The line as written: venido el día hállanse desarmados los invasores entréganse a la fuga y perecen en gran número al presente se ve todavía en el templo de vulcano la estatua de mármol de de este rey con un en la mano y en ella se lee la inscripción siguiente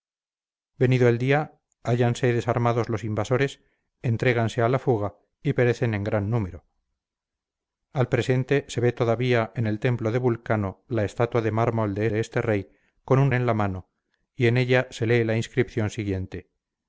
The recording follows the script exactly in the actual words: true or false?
true